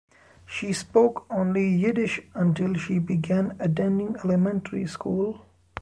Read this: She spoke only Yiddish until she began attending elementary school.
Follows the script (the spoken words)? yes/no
yes